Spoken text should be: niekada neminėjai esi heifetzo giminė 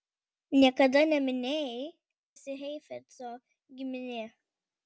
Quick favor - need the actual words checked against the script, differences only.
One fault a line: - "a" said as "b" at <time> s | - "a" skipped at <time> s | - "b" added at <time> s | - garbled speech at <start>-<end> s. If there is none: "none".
none